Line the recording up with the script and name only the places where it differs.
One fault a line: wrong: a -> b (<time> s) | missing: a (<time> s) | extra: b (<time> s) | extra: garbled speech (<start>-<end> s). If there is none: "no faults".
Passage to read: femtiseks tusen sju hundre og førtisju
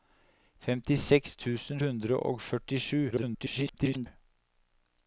missing: sju (1.8 s)
extra: garbled speech (3.1-4.1 s)